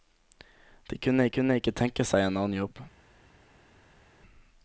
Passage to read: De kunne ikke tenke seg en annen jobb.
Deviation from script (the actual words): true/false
true